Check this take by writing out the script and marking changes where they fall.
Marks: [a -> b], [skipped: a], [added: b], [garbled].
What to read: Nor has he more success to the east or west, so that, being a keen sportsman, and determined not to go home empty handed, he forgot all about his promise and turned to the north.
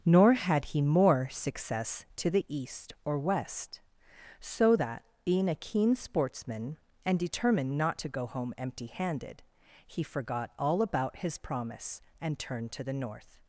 Nor [has -> had] he more success to the east or west, so that, being a keen sportsman, and determined not to go home empty handed, he forgot all about his promise and turned to the north.